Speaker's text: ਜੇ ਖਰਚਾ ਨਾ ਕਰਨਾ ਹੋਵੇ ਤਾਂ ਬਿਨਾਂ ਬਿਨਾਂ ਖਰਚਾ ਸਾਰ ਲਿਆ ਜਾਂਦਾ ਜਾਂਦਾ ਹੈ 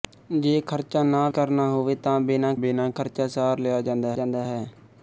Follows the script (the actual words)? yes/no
yes